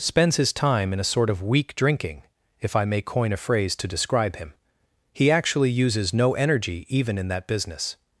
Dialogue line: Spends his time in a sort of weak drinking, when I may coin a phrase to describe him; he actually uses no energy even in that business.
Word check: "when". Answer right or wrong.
wrong